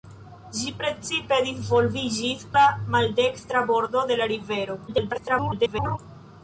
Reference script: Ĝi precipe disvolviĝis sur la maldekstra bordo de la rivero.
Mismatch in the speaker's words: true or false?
true